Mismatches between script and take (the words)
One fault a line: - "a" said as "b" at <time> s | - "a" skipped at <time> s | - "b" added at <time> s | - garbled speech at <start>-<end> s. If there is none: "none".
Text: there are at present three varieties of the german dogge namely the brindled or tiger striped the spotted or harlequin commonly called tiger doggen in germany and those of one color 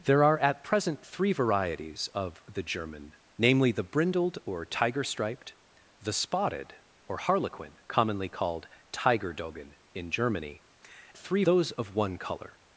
- "dogge" skipped at 3.2 s
- "and" said as "three" at 11.2 s